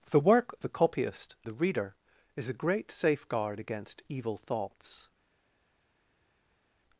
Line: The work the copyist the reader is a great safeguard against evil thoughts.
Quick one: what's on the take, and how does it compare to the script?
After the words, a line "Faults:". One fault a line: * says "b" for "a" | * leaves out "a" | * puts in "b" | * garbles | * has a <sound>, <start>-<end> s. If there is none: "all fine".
The work the copyist the reader is a great safeguard against evil thoughts.
Faults:
all fine